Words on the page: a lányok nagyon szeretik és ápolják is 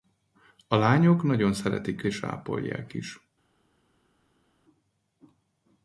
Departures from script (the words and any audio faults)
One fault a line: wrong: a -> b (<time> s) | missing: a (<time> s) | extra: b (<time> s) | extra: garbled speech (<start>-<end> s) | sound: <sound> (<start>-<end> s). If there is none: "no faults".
no faults